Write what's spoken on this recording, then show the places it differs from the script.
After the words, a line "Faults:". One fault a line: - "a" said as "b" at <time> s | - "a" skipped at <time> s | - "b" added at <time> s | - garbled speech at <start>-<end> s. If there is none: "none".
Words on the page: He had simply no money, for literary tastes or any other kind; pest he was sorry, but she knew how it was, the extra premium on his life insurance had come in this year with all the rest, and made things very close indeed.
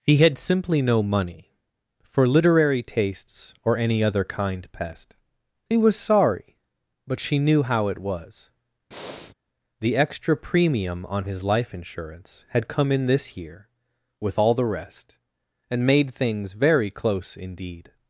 He had simply no money, for literary tastes or any other kind; pest he was sorry, but she knew how it was, the extra premium on his life insurance had come in this year with all the rest, and made things very close indeed.
Faults:
none